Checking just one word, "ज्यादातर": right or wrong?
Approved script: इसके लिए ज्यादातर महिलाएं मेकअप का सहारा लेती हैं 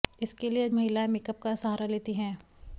wrong